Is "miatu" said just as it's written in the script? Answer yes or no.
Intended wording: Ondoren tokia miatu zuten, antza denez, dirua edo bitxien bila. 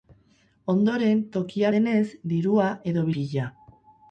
no